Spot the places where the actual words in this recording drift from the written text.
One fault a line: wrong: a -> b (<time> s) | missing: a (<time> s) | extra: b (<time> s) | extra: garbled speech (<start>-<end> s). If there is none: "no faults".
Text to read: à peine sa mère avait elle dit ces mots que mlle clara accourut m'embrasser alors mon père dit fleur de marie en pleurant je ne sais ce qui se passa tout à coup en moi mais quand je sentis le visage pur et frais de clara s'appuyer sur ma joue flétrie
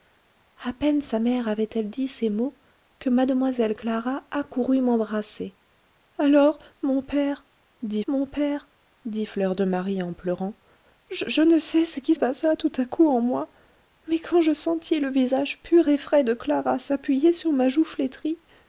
extra: mon père dit (8.1 s)
missing: se (12.2 s)